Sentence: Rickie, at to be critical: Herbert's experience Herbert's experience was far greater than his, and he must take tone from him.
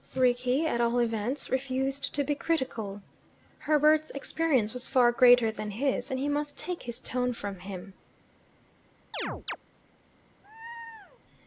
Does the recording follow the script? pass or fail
fail